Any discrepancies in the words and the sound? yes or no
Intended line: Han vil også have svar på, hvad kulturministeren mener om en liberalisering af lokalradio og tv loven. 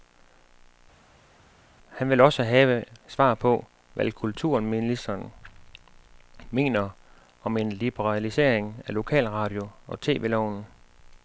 no